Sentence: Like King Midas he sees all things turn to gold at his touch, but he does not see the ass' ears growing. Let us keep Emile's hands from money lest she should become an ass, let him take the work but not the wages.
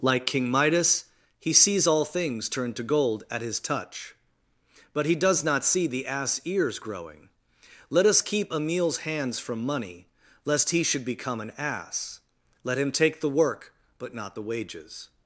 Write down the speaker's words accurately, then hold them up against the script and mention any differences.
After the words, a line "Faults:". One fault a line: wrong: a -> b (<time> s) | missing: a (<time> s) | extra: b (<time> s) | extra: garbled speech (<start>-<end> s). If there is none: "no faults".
Like King Midas he sees all things turn to gold at his touch, but he does not see the ass' ears growing. Let us keep Emile's hands from money lest he should become an ass, let him take the work but not the wages.
Faults:
wrong: she -> he (10.7 s)